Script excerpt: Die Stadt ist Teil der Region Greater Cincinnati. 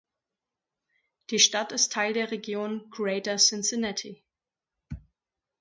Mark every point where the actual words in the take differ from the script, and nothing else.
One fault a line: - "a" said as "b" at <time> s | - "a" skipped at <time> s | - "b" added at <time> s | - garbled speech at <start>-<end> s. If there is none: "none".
none